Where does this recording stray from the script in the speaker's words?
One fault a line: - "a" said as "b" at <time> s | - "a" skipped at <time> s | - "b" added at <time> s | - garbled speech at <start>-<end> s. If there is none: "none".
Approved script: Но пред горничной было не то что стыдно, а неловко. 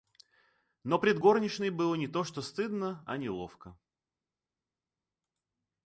none